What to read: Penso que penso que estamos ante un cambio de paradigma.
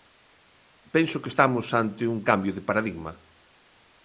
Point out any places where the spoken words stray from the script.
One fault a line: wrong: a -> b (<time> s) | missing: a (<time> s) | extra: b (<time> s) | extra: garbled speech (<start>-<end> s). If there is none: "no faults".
missing: penso que (1.3 s)